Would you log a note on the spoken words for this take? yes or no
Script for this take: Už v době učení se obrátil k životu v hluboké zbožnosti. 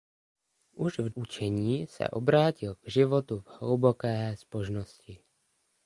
yes